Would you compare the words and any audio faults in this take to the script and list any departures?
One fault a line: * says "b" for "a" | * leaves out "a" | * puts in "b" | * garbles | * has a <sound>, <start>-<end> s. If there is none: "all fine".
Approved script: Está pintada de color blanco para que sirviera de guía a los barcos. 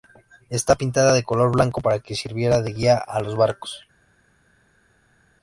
all fine